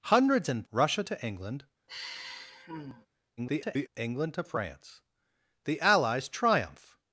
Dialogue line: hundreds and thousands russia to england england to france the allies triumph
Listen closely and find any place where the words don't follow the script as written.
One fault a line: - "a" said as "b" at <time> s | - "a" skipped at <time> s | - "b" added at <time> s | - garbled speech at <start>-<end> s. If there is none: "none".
- "thousands" skipped at 0.7 s
- garbled speech at 3.4-3.9 s